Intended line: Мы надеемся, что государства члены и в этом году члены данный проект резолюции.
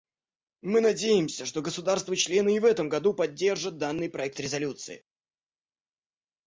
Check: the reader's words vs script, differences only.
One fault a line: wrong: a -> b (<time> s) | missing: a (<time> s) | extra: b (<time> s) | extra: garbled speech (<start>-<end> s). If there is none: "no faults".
wrong: члены -> поддержат (3.1 s)